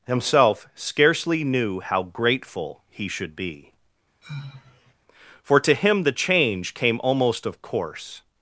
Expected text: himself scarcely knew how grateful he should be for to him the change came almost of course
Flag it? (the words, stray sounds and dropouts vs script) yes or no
yes